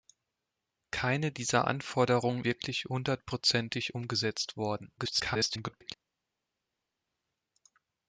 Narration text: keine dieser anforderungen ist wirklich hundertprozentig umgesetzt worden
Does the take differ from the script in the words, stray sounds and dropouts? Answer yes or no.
yes